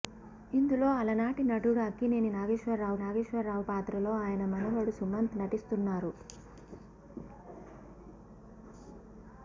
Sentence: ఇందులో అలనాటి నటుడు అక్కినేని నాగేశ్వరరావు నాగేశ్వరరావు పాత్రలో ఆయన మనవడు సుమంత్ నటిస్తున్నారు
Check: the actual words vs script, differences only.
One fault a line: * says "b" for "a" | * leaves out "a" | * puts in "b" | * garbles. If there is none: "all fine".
all fine